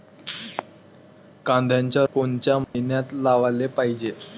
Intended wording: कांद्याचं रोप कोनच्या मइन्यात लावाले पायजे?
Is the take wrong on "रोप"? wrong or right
wrong